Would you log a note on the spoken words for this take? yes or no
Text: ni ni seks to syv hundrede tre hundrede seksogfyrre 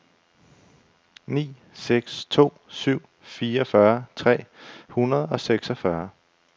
yes